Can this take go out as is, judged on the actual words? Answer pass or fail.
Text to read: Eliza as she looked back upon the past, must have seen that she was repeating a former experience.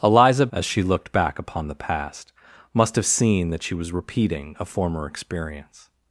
pass